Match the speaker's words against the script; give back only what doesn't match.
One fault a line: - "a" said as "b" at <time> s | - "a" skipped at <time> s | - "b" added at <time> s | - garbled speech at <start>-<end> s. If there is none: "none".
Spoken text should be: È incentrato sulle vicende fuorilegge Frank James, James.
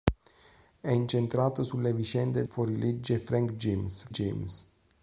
none